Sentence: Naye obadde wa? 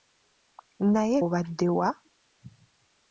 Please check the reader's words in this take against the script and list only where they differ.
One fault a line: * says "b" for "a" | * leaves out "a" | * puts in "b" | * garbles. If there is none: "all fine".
all fine